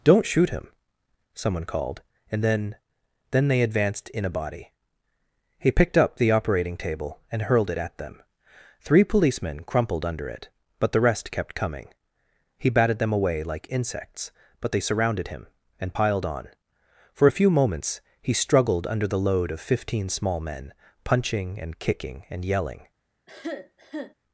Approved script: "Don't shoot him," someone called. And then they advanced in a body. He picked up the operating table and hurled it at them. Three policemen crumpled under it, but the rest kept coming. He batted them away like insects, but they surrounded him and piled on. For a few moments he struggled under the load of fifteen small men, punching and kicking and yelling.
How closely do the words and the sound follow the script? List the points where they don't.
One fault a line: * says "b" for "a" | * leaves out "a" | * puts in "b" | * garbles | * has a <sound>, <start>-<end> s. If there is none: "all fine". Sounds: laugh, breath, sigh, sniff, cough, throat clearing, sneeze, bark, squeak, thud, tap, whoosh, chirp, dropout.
* puts in "then"
* has a cough, 23.3-24.1 s